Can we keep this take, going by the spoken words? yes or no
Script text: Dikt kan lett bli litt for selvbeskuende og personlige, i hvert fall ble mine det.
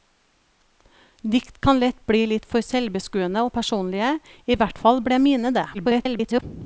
no